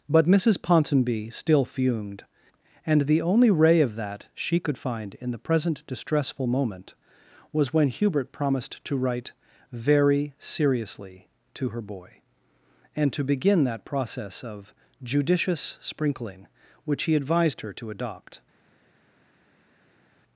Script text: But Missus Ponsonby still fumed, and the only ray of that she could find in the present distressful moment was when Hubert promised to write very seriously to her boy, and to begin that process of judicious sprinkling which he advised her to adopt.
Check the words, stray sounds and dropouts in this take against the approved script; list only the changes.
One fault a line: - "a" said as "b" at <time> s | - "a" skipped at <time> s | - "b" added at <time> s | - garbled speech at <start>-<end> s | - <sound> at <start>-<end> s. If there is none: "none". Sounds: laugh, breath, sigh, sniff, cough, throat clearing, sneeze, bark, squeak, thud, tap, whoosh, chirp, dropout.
none